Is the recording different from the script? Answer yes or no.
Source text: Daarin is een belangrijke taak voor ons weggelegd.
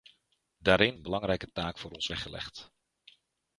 yes